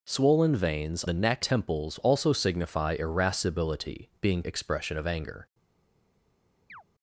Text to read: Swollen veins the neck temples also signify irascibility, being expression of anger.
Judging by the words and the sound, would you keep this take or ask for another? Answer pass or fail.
fail